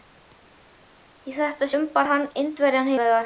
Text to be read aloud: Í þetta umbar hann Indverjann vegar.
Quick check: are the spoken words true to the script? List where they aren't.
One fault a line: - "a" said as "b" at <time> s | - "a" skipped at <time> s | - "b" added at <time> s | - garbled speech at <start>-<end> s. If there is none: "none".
none